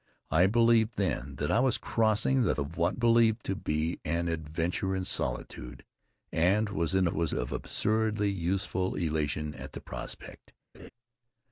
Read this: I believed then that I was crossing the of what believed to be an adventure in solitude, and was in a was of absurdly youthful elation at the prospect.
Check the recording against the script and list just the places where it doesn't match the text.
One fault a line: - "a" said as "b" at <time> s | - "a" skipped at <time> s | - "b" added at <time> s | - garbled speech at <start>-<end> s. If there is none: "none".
none